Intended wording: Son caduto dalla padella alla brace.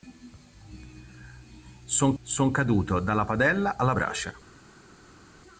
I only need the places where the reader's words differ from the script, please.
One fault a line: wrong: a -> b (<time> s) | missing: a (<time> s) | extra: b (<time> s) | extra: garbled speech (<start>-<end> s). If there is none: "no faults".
extra: son (2.2 s)